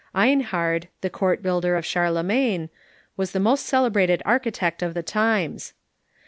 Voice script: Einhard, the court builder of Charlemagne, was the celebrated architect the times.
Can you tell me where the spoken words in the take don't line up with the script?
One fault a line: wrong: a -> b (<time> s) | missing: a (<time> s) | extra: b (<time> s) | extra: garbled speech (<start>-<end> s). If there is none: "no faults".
extra: most (3.4 s)
extra: of (4.8 s)